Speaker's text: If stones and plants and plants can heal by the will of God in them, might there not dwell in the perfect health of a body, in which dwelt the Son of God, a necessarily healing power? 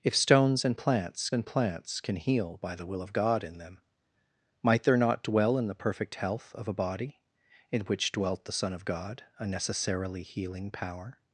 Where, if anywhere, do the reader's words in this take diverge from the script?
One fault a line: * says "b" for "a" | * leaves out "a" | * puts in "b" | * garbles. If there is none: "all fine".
all fine